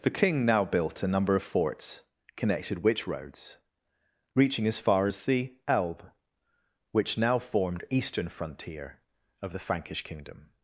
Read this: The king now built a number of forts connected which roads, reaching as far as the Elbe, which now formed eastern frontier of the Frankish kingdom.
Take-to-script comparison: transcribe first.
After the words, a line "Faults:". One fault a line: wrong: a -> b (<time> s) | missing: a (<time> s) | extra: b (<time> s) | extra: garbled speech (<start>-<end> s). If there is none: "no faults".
The king now built a number of forts connected which roads, reaching as far as the Elbe, which now formed eastern frontier of the Frankish kingdom.
Faults:
no faults